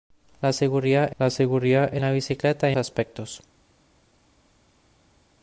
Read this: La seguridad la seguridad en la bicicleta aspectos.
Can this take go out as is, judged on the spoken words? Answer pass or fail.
pass